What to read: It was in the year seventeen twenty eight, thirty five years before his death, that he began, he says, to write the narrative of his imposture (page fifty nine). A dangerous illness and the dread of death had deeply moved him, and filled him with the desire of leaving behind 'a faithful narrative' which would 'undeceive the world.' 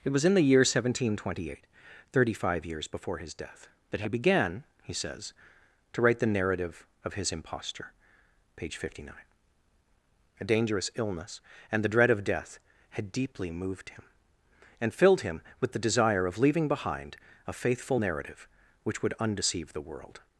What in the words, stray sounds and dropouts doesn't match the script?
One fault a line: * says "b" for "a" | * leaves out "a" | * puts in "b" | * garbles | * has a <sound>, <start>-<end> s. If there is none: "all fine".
all fine